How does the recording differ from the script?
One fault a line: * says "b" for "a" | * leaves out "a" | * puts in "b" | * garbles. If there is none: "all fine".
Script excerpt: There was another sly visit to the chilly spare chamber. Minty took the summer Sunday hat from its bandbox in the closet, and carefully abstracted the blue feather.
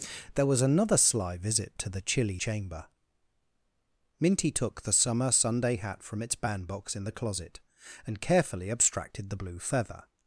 * leaves out "spare"